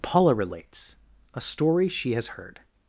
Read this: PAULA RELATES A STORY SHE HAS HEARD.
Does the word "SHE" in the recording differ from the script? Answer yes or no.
no